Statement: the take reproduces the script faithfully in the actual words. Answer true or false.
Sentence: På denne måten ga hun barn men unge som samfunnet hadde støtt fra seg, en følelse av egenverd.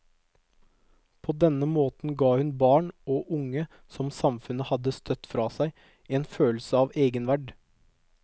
false